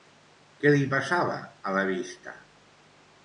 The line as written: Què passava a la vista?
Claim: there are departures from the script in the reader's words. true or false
true